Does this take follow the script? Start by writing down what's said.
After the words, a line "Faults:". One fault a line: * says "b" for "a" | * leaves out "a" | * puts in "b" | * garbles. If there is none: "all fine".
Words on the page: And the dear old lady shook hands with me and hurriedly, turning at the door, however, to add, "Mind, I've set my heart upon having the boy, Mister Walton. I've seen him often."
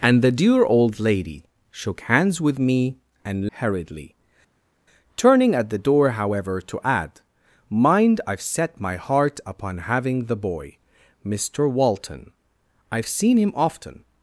And the dear old lady shook hands with me and hurriedly, turning at the door, however, to add, "Mind, I've set my heart upon having the boy, Mister Walton. I've seen him often."
Faults:
all fine